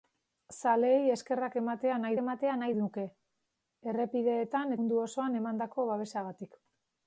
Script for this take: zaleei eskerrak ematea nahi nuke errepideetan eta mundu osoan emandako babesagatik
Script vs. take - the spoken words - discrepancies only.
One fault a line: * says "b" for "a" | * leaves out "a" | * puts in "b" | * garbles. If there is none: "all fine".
* puts in "ematea nahi"
* leaves out "eta"